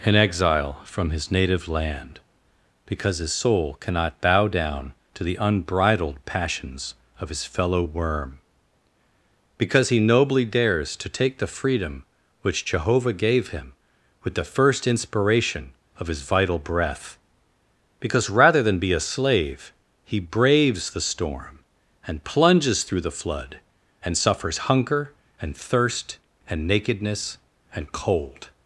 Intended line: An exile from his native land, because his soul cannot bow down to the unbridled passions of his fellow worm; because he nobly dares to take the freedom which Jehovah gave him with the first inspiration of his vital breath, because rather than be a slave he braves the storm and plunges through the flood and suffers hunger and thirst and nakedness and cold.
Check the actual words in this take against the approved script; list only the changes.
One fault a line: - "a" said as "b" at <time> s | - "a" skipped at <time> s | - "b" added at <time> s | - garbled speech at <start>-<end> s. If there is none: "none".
none